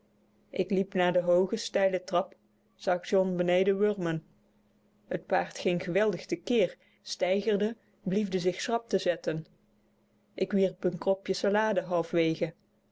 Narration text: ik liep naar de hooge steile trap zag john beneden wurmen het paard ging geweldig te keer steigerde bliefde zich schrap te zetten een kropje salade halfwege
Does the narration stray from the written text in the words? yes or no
yes